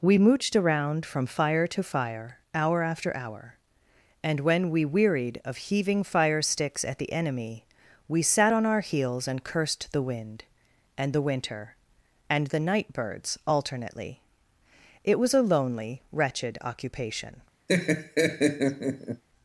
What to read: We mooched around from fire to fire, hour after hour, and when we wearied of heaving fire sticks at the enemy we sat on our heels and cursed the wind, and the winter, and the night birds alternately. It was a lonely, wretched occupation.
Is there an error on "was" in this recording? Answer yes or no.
no